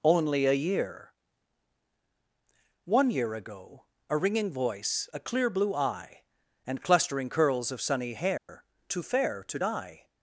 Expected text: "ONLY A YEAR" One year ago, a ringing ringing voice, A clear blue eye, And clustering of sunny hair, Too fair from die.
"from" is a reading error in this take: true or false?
true